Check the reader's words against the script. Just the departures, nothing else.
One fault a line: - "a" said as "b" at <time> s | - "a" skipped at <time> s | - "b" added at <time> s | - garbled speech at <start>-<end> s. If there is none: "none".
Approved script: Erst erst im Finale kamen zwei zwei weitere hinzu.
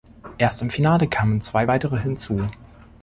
- "erst" skipped at 0.6 s
- "zwei" skipped at 1.7 s